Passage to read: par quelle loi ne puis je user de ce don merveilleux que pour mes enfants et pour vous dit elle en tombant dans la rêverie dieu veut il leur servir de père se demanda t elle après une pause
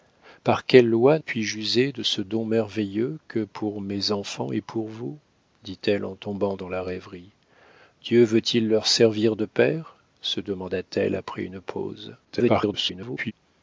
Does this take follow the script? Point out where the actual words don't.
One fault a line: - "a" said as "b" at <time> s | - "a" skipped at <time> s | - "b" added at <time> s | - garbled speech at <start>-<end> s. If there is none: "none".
- "ne" skipped at 1.2 s
- garbled speech at 12.2-13.3 s